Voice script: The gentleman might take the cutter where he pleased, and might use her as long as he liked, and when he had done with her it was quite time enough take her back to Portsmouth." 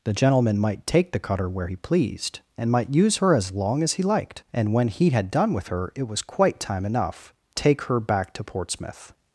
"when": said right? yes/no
yes